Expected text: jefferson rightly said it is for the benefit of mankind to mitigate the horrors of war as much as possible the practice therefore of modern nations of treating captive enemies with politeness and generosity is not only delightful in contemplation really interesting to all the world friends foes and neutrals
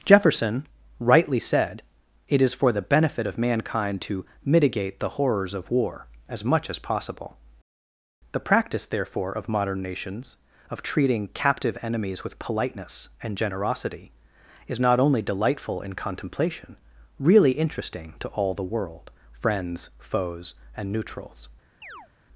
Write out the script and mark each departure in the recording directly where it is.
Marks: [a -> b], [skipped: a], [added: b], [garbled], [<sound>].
jefferson rightly said it is for the benefit of mankind to mitigate the horrors of war as much as possible the practice therefore of modern nations of treating captive enemies with politeness and generosity is not only delightful in contemplation really interesting to all the world friends foes and neutrals [chirp]